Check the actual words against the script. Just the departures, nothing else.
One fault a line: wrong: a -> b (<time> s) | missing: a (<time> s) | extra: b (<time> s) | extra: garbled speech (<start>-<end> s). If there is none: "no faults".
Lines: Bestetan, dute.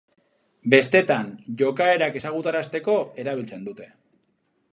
extra: jokaerak ezagutarazteko erabiltzen (1.6 s)